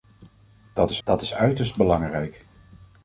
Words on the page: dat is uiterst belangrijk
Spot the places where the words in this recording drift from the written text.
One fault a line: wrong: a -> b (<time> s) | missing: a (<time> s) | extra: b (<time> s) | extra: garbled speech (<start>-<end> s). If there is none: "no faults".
extra: dat is (1.0 s)